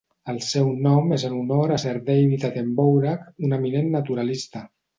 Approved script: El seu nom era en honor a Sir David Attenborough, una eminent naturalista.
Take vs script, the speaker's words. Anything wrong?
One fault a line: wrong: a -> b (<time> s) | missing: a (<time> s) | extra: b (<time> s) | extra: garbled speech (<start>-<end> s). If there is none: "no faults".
wrong: era -> és (1.2 s)
wrong: una -> un (3.5 s)